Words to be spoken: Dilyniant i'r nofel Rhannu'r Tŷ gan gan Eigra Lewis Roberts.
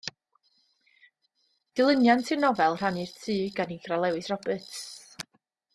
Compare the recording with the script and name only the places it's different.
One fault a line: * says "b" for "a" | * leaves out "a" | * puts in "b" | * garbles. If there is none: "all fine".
* leaves out "gan"